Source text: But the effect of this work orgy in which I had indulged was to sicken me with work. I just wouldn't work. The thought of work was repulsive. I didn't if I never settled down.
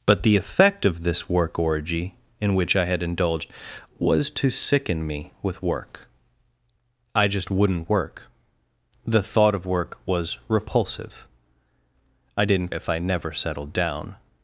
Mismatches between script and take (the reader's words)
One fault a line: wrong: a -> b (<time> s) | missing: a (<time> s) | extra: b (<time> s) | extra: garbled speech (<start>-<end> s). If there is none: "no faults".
no faults